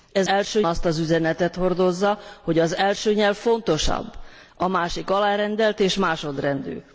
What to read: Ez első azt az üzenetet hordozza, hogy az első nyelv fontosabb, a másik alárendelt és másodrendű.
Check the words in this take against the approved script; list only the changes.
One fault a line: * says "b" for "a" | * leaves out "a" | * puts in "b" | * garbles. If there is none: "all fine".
all fine